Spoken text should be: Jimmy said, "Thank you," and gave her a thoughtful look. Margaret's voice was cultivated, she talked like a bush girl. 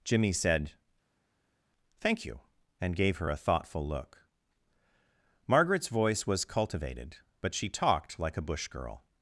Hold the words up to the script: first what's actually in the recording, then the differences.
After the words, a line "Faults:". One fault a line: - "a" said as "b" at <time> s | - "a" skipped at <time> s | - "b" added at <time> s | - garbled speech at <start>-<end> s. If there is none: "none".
Jimmy said, "Thank you," and gave her a thoughtful look. Margaret's voice was cultivated, but she talked like a bush girl.
Faults:
- "but" added at 7.4 s